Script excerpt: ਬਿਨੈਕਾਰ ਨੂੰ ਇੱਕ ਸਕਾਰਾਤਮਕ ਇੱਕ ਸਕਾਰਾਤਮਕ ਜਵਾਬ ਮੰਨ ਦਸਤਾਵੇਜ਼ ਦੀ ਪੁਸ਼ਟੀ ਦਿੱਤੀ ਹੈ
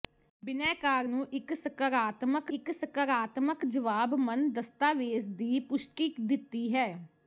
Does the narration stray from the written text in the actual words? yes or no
no